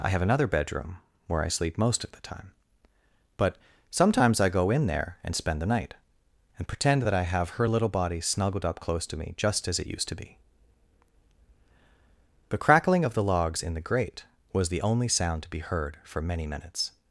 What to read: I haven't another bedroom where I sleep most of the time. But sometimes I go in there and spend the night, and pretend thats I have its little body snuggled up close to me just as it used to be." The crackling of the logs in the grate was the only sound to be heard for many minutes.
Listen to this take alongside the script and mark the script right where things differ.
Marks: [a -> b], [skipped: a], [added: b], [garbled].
I [haven't -> have] another bedroom where I sleep most of the time. But sometimes I go in there and spend the night, and pretend [thats -> that] I have [its -> her] little body snuggled up close to me just as it used to be." The crackling of the logs in the grate was the only sound to be heard for many minutes.